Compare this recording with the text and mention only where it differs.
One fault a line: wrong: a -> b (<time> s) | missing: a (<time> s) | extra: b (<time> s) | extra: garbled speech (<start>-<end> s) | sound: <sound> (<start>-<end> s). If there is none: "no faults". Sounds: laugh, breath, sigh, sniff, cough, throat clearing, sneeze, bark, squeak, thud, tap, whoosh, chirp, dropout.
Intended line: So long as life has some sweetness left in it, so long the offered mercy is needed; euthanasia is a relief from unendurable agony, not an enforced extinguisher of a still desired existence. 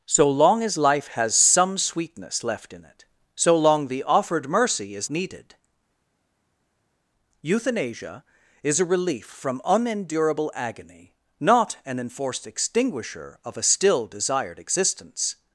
no faults